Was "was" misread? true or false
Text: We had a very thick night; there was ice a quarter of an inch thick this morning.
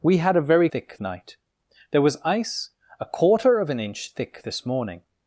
false